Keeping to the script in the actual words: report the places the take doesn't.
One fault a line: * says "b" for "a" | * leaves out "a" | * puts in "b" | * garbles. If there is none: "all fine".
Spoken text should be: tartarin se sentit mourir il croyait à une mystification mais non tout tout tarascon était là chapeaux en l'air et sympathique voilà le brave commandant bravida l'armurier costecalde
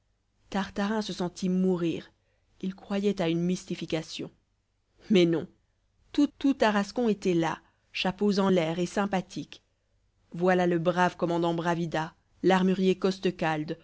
all fine